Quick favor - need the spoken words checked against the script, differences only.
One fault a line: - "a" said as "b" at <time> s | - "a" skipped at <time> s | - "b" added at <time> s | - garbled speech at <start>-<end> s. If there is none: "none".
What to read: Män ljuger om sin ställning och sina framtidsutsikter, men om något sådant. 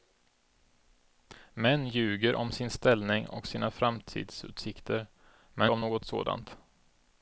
none